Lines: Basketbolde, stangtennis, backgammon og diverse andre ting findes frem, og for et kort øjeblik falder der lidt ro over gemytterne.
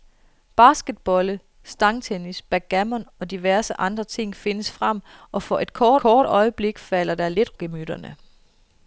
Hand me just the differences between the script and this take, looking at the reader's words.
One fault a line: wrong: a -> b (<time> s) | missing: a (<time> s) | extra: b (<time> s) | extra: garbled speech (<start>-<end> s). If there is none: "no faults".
extra: kort (6.0 s)
missing: ro over (7.6 s)